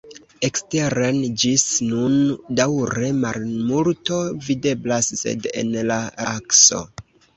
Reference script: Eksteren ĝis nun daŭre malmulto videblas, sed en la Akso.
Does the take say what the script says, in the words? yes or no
yes